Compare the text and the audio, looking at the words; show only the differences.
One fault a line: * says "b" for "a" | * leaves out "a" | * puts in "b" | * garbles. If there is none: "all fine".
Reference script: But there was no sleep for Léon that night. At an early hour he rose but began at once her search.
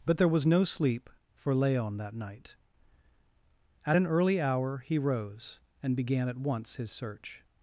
* says "and" for "but"
* says "his" for "her"